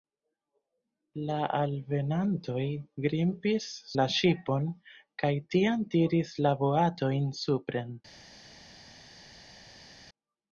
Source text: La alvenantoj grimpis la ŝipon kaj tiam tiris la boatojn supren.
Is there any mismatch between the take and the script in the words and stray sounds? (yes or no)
no